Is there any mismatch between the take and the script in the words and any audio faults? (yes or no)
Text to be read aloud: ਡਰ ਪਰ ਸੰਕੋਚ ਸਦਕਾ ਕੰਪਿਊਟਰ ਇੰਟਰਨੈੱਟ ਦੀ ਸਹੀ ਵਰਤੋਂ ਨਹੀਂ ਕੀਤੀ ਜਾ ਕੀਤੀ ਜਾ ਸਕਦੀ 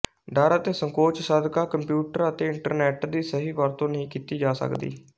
yes